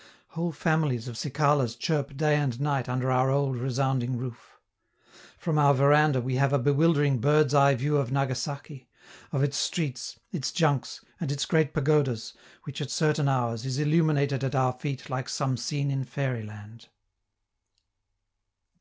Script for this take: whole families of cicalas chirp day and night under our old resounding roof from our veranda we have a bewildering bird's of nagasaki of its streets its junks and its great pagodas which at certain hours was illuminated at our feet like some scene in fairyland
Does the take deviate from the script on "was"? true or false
true